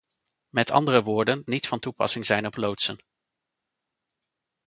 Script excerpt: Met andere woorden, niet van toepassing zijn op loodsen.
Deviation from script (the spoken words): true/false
false